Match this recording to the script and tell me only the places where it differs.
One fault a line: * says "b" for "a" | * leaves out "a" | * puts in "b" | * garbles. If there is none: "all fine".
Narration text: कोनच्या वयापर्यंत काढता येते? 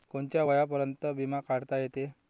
* puts in "बिमा"